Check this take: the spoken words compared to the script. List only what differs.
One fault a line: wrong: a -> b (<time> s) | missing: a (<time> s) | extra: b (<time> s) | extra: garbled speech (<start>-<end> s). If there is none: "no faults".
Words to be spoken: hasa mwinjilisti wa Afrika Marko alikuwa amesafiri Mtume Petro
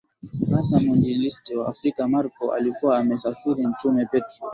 no faults